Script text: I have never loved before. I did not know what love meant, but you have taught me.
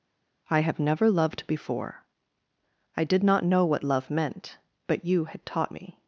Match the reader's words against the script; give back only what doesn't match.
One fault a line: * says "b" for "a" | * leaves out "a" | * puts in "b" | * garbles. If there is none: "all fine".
* says "had" for "have"